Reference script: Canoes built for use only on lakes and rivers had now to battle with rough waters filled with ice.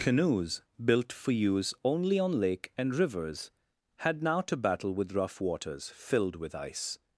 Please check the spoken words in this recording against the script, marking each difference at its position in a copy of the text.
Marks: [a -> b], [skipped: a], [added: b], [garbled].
Canoes built for use only on [lakes -> lake] and rivers had now to battle with rough waters filled with ice.